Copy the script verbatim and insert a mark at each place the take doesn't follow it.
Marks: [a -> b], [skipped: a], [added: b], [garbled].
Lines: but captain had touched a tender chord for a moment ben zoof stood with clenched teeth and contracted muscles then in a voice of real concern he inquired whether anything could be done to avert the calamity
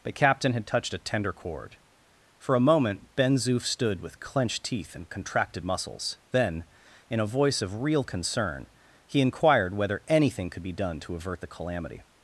but captain had touched a tender chord for a moment ben zoof stood with clenched teeth and contracted muscles then in a voice of real concern he inquired whether anything could be done to avert the calamity